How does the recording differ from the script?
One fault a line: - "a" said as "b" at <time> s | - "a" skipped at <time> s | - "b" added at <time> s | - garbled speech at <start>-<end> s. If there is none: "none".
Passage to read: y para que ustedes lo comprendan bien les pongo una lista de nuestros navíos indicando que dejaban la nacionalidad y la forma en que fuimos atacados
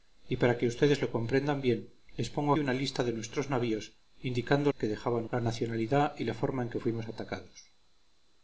none